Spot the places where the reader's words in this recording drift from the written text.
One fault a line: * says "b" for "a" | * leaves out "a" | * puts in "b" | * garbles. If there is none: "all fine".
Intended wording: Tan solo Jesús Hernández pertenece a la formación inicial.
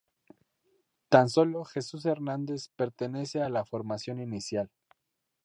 all fine